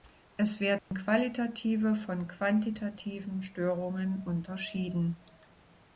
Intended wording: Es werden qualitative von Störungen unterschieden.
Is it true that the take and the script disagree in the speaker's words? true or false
true